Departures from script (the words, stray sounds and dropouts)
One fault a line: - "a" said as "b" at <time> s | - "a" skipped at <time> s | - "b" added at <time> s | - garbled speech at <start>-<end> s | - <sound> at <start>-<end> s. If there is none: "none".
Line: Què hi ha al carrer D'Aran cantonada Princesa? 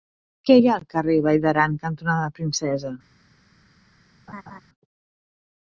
- "Vall" added at 1.2 s
- laugh at 4.3-4.6 s